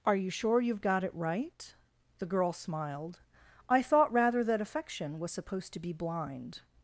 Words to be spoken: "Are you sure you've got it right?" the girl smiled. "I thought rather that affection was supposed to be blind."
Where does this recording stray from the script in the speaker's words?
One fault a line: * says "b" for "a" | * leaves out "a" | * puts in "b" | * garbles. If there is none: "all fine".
all fine